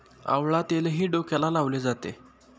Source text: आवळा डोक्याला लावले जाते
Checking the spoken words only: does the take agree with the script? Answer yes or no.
no